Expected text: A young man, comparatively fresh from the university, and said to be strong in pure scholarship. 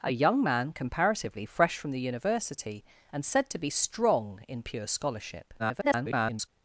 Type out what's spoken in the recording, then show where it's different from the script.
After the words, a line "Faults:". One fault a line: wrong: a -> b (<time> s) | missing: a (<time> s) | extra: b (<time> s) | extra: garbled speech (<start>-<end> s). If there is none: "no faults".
A young man, comparatively fresh from the university, and said to be strong in pure scholarship. [garbled]
Faults:
extra: garbled speech (5.6-6.5 s)